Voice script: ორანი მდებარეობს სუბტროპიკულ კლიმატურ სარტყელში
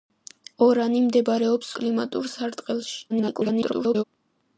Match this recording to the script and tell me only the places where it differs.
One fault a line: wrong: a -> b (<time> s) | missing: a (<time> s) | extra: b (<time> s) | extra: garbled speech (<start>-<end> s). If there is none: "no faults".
missing: სუბტროპიკულ (1.7 s)
extra: garbled speech (3.1-4.0 s)